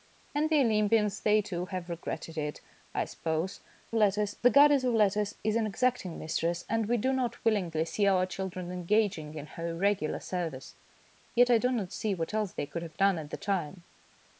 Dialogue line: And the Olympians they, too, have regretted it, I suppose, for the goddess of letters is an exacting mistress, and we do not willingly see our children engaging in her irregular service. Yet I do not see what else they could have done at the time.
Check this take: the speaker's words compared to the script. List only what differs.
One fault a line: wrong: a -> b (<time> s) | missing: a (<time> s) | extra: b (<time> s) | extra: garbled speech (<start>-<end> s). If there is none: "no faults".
wrong: for -> letters (3.9 s)